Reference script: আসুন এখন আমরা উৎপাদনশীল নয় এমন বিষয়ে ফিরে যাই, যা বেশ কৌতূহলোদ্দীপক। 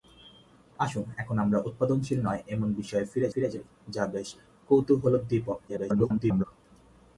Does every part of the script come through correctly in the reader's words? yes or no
no